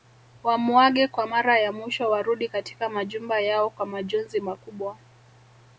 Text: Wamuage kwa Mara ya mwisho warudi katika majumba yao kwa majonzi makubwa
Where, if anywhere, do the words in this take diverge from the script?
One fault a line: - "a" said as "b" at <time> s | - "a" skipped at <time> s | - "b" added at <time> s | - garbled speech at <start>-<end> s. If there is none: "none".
none